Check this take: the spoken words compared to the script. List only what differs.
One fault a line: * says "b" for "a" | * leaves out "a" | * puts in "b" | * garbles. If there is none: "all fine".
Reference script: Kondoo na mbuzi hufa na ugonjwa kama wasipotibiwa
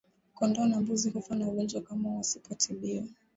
all fine